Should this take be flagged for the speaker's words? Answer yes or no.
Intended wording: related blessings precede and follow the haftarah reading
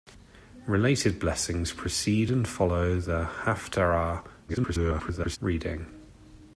yes